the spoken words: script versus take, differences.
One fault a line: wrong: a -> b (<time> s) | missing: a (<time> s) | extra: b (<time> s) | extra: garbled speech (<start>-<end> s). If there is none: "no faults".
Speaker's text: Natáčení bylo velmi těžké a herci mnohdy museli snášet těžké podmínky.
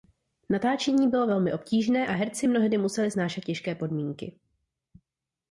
wrong: těžké -> obtížné (1.5 s)